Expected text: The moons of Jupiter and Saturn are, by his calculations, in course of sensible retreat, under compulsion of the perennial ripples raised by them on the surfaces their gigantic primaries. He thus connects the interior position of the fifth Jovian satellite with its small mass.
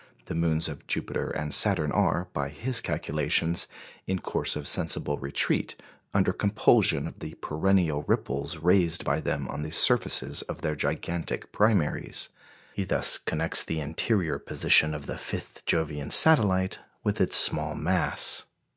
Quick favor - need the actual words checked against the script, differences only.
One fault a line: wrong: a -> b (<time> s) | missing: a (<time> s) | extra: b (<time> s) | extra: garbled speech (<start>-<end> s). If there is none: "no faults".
extra: of (10.4 s)